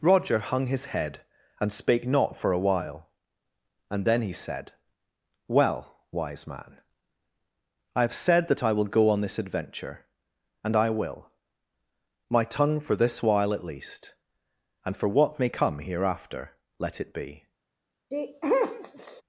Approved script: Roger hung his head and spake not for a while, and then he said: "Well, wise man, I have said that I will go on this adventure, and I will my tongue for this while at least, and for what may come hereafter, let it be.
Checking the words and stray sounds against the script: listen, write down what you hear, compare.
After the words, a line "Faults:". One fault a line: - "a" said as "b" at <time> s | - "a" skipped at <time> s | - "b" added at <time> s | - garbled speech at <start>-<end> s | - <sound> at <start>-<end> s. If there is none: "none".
Roger hung his head and spake not for a while, and then he said: "Well, wise man, I have said that I will go on this adventure, and I will my tongue for this while at least, and for what may come hereafter, let it be.
Faults:
- sneeze at 18.1-19.2 s